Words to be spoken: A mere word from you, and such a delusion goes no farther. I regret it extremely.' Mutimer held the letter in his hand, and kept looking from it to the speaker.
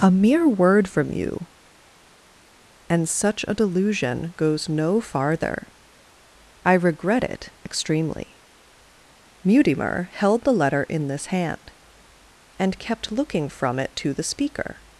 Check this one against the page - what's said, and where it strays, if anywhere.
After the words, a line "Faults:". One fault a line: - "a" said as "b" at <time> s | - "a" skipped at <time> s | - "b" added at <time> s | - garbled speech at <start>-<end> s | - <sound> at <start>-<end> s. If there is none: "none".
A mere word from you, and such a delusion goes no farther. I regret it extremely.' Mutimer held the letter in this hand, and kept looking from it to the speaker.
Faults:
- "his" said as "this" at 11.1 s